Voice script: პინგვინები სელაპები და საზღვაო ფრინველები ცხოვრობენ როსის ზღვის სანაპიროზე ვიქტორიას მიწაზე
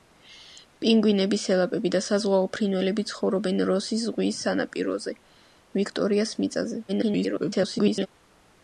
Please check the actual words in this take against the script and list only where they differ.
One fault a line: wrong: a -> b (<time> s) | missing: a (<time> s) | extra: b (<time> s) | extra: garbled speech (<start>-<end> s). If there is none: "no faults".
extra: garbled speech (6.9-8.1 s)